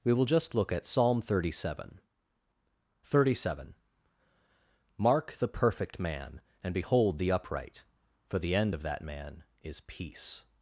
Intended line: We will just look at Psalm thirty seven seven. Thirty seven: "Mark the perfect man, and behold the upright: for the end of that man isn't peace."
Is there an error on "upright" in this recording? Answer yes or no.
no